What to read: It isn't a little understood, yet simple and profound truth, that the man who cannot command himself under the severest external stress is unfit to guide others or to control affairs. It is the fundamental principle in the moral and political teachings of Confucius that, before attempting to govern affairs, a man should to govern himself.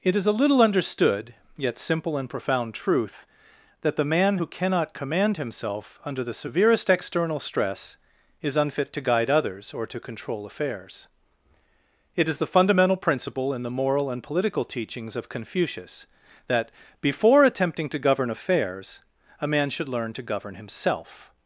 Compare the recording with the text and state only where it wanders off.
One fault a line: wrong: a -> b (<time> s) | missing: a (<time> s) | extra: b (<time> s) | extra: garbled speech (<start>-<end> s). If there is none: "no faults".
wrong: isn't -> is (0.1 s)
extra: learn (19.9 s)